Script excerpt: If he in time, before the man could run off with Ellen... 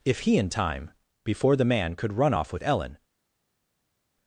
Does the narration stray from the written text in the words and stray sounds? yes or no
no